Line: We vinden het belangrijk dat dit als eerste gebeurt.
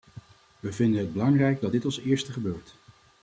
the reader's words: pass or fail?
pass